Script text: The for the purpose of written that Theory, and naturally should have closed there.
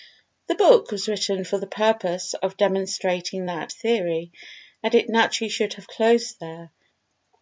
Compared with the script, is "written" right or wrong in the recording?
wrong